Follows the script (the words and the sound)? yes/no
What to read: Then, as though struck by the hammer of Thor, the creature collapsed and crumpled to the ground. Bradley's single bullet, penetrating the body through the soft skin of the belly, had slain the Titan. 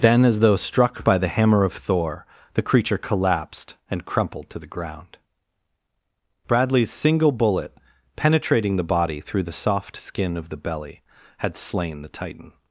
yes